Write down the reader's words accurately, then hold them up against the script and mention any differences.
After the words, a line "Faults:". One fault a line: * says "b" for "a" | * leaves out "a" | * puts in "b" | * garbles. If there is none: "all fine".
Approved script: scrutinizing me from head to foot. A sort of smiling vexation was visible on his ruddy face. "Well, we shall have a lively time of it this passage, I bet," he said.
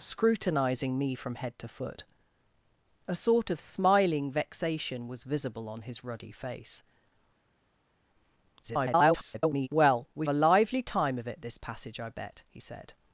scrutinizing me from head to foot. A sort of smiling vexation was visible on his ruddy face. [garbled] "Well, we a lively time of it this passage, I bet," he said.
Faults:
* garbles
* leaves out "shall have"